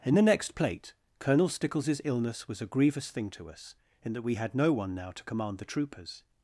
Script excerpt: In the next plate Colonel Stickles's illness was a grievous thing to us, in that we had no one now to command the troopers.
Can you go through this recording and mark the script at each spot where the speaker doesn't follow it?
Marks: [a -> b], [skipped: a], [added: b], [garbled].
In the next plate Colonel Stickles's illness was a grievous thing to us, in that we had no one now to command the troopers.